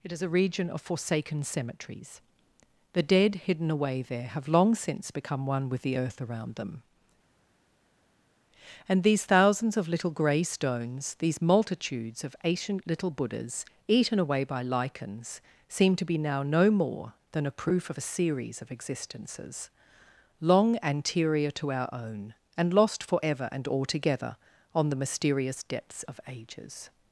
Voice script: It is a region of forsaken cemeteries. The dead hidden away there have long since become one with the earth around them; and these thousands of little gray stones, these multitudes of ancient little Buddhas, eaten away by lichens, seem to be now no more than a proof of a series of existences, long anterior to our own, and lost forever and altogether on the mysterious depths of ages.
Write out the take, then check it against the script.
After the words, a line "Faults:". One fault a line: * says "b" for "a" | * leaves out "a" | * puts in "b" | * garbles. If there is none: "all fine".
It is a region of forsaken cemeteries. The dead hidden away there have long since become one with the earth around them; and these thousands of little gray stones, these multitudes of ancient little Buddhas, eaten away by lichens, seem to be now no more than a proof of a series of existences, long anterior to our own, and lost forever and altogether on the mysterious depths of ages.
Faults:
all fine